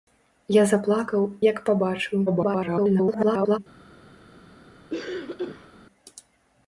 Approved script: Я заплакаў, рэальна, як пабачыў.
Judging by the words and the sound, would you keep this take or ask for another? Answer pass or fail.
fail